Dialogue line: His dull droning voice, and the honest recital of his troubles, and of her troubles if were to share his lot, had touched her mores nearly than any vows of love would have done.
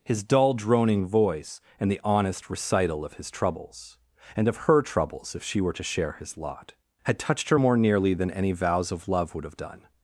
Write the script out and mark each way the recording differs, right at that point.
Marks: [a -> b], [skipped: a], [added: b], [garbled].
His dull droning voice, and the honest recital of his troubles, and of her troubles if [added: she] were to share his lot, had touched her [mores -> more] nearly than any vows of love would have done.